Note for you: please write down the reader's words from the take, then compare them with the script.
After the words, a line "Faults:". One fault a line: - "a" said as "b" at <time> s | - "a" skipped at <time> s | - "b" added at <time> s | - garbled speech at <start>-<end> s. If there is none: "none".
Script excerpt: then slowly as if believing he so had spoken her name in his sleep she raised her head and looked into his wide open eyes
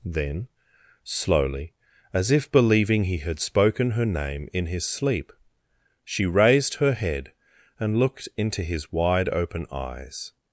then slowly as if believing he had spoken her name in his sleep she raised her head and looked into his wide open eyes
Faults:
- "so" skipped at 3.2 s